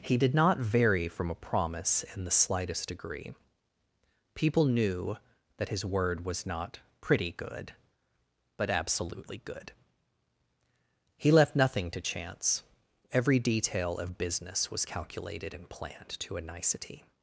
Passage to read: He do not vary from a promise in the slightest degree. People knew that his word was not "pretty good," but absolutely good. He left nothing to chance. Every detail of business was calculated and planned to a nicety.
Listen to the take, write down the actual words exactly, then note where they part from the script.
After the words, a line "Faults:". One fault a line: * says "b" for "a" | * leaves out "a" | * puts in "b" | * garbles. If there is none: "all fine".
He did not vary from a promise in the slightest degree. People knew that his word was not "pretty good," but absolutely good. He left nothing to chance. Every detail of business was calculated and planned to a nicety.
Faults:
* says "did" for "do"